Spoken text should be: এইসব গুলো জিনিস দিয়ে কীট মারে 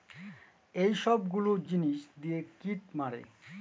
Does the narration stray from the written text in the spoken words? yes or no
no